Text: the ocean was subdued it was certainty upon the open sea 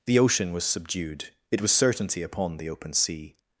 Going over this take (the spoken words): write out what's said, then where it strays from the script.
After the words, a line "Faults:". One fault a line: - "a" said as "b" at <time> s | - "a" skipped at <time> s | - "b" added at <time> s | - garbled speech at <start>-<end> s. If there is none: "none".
the ocean was subdued it was certainty upon the open sea
Faults:
none